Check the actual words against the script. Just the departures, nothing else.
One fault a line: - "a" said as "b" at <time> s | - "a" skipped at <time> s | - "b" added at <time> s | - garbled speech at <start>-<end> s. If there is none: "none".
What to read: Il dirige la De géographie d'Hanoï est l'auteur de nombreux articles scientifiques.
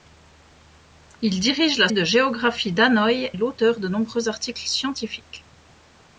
none